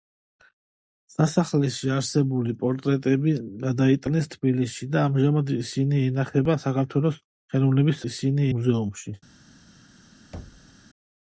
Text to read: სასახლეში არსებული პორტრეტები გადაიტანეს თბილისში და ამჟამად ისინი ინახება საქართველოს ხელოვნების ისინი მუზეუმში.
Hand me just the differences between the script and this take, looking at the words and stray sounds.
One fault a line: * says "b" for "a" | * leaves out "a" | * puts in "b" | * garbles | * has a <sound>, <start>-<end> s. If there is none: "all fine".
* has a thud, 10.3-10.7 s